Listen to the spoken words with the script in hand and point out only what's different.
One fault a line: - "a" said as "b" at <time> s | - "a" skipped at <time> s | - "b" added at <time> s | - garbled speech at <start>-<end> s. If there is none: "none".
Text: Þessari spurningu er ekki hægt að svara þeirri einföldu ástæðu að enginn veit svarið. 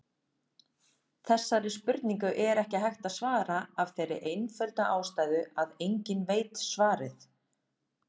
- "af" added at 3.9 s